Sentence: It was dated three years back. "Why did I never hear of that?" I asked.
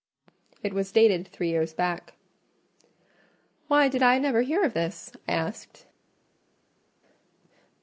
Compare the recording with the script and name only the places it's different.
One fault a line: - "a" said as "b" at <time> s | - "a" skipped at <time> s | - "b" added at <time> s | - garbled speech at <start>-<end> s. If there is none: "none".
- "that" said as "this" at 4.7 s